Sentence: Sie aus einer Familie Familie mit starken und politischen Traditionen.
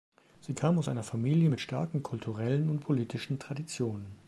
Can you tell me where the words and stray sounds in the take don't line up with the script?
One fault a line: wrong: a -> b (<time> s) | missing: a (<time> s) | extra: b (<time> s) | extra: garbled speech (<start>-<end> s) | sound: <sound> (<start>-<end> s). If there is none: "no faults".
extra: kam (0.6 s)
missing: Familie (1.5 s)
extra: kulturellen (2.0 s)